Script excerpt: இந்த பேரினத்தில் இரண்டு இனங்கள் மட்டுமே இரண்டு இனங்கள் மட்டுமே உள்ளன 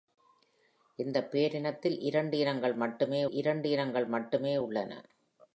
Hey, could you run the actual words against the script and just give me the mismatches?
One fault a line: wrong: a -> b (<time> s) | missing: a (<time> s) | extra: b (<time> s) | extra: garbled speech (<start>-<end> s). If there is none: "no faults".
no faults